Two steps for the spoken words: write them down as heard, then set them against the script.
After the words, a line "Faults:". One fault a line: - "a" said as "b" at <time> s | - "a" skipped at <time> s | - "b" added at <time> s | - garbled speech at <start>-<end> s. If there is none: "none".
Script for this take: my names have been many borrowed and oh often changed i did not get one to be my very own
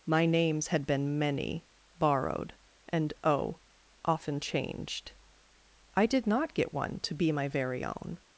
my names had been many borrowed and oh often changed i did not get one to be my very own
Faults:
- "have" said as "had" at 0.7 s